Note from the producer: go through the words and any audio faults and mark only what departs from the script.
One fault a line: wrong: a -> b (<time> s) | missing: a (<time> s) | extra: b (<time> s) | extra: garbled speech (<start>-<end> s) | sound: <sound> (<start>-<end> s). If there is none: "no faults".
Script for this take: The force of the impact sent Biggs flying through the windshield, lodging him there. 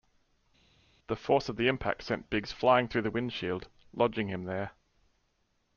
no faults